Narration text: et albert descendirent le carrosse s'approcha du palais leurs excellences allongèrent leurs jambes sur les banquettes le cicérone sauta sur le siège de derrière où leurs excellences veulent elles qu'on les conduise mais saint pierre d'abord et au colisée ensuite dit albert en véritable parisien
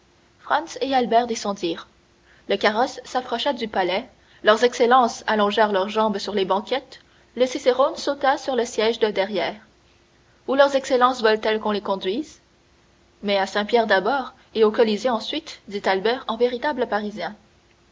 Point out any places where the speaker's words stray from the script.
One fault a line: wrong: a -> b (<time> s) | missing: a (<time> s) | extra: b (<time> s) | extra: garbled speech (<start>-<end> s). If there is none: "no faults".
extra: à (13.4 s)